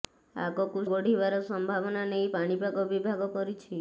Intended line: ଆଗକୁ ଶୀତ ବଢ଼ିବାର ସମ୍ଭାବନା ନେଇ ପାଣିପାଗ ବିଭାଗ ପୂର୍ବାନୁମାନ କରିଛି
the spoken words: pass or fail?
fail